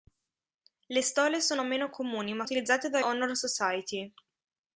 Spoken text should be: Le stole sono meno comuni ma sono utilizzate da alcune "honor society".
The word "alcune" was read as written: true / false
false